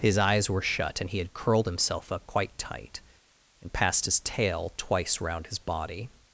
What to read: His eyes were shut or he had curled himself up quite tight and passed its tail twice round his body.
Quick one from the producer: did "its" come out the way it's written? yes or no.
no